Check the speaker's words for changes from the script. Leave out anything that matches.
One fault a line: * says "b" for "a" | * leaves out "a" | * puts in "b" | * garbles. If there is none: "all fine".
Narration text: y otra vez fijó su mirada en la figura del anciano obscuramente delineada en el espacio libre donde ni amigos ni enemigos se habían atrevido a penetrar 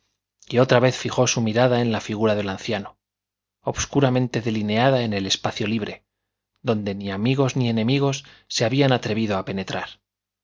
all fine